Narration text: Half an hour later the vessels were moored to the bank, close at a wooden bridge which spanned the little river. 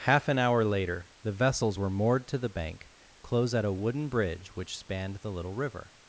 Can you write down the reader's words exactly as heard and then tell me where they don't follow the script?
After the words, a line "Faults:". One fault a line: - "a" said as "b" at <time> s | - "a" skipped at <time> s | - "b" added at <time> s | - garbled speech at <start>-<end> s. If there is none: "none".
Half an hour later the vessels were moored to the bank, close at a wooden bridge which spanned the little river.
Faults:
none